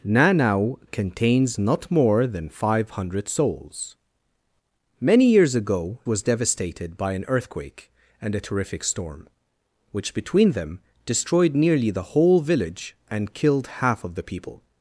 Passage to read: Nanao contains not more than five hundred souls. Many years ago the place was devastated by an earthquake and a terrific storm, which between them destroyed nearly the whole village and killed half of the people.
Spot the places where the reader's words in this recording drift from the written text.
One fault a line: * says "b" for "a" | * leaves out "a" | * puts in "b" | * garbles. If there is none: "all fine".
* leaves out "the place"